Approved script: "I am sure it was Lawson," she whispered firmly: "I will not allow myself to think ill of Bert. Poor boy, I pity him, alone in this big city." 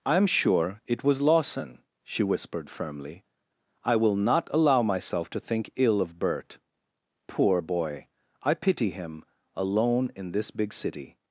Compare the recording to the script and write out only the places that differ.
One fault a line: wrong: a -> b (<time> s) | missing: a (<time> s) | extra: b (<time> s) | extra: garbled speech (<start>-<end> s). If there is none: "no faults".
no faults